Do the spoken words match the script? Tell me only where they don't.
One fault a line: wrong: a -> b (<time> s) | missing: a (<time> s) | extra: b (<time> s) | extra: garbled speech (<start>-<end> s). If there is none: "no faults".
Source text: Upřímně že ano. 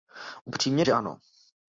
no faults